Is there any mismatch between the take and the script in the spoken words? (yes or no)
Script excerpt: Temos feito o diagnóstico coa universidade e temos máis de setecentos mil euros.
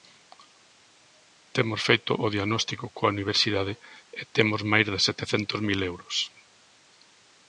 no